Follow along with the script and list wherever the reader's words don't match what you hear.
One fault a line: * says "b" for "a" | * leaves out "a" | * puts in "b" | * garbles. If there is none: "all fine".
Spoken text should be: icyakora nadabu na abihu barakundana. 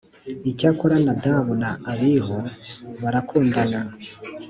all fine